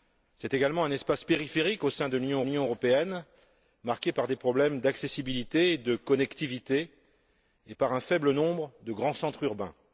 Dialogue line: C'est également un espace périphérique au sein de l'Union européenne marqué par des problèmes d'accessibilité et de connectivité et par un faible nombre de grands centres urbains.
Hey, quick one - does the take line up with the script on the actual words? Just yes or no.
no